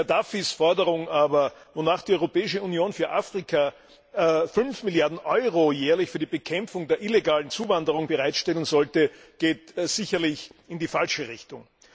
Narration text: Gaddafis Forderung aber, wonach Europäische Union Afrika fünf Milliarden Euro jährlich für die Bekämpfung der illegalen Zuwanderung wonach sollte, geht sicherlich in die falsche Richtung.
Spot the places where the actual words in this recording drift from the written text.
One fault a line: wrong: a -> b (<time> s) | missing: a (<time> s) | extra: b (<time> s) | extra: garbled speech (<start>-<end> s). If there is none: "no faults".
extra: die (2.0 s)
extra: für (2.9 s)
wrong: wonach -> bereitstellen (8.0 s)